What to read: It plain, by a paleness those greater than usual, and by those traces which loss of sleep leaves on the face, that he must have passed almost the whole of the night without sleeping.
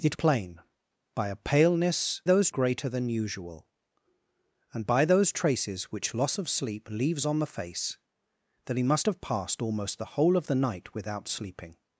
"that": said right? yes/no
yes